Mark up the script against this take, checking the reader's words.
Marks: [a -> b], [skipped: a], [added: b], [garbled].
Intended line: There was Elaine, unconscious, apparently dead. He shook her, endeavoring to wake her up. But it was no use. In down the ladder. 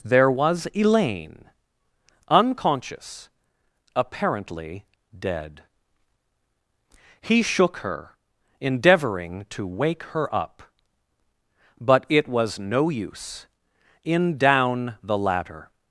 There was Elaine, unconscious, apparently dead. He shook her, endeavoring to wake her up. But it was no use. In down the ladder.